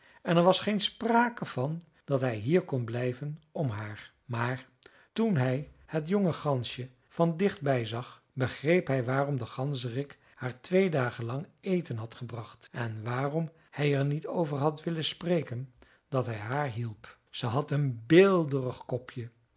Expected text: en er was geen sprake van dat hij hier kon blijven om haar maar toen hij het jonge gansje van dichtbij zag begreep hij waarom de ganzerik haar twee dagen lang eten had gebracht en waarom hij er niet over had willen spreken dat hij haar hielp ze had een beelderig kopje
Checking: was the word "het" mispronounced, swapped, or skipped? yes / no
no